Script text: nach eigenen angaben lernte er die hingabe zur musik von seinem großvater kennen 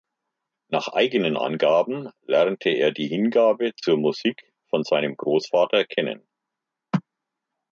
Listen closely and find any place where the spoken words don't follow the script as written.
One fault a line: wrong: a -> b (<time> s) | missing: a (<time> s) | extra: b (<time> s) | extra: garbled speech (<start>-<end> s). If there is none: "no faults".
no faults